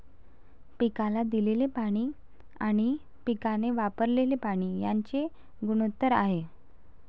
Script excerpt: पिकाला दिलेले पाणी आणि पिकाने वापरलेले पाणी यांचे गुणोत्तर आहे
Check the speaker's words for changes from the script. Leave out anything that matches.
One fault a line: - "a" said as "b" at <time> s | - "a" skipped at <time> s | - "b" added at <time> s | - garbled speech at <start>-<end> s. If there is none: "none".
none